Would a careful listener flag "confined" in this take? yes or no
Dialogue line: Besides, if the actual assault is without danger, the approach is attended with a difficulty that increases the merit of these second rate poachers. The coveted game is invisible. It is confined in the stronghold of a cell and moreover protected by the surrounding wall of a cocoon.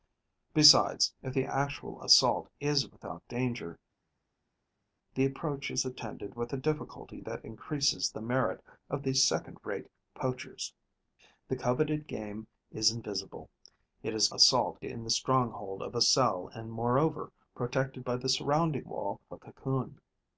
yes